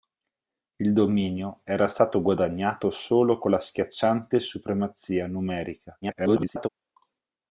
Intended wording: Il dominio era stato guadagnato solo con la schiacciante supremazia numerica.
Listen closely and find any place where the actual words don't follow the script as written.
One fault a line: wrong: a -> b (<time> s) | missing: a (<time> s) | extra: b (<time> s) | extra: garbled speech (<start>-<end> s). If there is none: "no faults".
extra: garbled speech (6.0-6.7 s)